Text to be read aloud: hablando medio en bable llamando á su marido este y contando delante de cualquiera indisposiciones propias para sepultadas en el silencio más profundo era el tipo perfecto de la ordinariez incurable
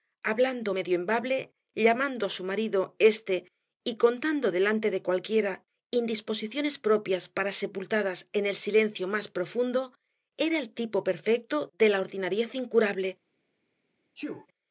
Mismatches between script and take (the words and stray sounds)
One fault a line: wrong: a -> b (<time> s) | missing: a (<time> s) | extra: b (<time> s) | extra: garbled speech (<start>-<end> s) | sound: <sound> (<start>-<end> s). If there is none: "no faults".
sound: sneeze (14.2-14.5 s)